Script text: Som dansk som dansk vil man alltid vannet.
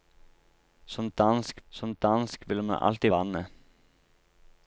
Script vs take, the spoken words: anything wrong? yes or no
no